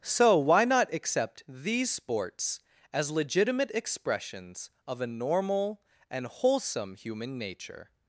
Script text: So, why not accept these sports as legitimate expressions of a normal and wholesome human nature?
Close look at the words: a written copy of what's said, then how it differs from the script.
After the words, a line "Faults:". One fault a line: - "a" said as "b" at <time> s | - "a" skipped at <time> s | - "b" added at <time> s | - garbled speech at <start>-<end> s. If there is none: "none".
So, why not accept these sports as legitimate expressions of a normal and wholesome human nature?
Faults:
none